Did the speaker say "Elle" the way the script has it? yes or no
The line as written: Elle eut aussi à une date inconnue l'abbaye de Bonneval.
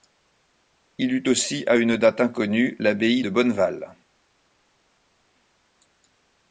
no